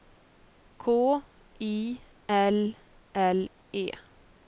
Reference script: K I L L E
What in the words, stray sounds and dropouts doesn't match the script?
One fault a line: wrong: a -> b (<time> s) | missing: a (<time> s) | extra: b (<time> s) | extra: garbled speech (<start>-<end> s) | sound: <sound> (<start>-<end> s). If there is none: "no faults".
no faults